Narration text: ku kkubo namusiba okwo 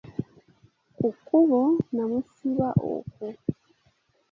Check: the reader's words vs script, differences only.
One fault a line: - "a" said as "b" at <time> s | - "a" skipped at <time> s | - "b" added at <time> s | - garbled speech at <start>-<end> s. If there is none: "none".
none